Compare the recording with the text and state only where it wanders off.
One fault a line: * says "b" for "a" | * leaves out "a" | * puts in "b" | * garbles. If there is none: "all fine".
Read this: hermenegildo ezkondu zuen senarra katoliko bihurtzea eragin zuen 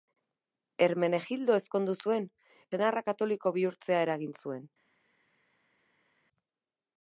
all fine